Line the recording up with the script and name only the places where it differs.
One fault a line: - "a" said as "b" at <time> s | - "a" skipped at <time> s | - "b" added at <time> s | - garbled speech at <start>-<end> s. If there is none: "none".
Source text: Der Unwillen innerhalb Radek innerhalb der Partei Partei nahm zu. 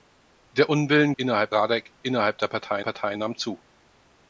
none